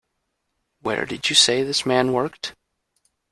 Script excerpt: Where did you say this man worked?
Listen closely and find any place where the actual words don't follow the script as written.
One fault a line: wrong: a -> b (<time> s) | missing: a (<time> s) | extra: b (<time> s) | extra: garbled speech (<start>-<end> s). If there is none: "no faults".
no faults